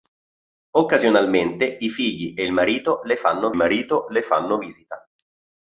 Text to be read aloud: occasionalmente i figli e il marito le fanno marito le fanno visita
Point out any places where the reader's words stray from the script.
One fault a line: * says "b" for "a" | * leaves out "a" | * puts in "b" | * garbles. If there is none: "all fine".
all fine